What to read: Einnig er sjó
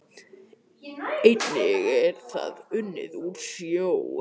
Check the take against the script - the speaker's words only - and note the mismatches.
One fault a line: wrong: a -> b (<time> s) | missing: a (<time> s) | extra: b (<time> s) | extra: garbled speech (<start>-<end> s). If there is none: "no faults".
extra: það unnið úr (2.3 s)